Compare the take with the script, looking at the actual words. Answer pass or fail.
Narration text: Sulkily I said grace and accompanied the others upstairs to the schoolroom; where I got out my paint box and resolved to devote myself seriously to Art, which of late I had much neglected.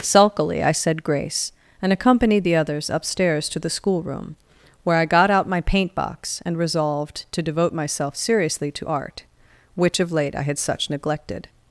fail